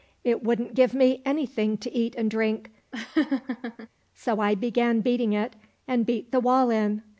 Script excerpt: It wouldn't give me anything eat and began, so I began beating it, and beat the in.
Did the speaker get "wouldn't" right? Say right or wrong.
right